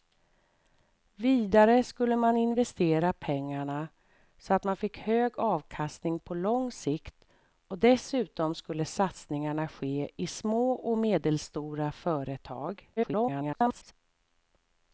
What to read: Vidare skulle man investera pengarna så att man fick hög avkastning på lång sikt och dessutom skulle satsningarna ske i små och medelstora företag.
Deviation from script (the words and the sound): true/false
true